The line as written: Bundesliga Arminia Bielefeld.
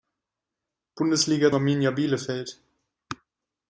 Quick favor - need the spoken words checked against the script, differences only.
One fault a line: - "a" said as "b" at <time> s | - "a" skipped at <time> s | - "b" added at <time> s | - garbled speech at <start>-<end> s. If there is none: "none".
none